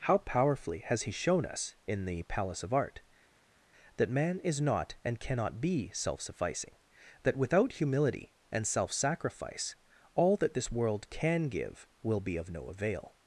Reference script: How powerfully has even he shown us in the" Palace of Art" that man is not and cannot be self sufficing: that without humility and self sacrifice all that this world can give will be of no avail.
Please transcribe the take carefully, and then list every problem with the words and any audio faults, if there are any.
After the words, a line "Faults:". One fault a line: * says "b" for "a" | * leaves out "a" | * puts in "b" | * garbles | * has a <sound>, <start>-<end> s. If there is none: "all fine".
How powerfully has he shown us in the" Palace of Art" that man is not and cannot be self sufficing: that without humility and self sacrifice all that this world can give will be of no avail.
Faults:
* leaves out "even"